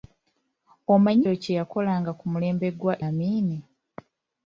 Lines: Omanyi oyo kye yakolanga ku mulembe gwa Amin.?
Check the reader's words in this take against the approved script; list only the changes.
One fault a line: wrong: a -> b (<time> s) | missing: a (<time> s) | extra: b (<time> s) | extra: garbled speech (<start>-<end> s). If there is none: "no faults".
no faults